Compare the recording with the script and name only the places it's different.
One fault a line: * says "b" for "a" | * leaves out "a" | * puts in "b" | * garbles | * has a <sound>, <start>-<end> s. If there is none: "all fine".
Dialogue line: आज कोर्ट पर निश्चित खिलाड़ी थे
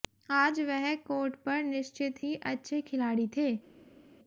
* puts in "वह"
* puts in "ही अच्छे"